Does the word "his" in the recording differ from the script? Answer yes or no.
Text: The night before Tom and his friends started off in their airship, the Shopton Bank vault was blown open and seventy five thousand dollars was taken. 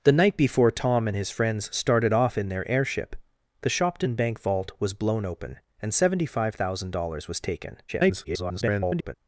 no